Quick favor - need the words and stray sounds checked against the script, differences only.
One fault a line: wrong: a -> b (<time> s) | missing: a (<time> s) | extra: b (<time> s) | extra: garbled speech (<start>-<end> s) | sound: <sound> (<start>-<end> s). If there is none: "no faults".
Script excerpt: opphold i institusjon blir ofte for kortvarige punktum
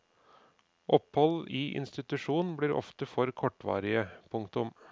no faults